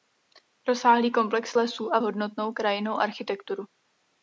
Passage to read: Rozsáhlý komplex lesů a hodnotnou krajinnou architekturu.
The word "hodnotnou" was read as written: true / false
true